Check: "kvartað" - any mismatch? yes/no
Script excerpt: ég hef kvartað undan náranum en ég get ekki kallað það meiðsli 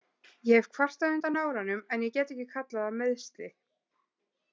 no